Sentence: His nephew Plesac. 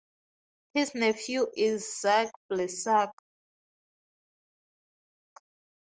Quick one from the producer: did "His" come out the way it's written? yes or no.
yes